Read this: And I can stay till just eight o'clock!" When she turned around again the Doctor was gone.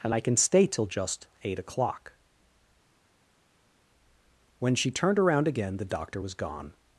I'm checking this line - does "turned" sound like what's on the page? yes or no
yes